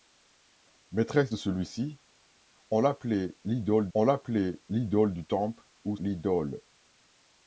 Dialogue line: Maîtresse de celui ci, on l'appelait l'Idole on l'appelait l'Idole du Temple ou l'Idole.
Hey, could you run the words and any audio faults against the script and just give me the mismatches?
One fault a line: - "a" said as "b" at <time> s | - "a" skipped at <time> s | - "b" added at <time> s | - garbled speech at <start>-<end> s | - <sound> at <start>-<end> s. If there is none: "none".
none